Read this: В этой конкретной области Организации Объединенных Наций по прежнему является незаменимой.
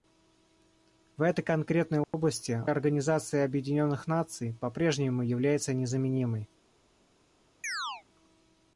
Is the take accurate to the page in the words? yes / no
yes